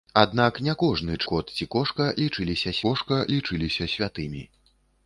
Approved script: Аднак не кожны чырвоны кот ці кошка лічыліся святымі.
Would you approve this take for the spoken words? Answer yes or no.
no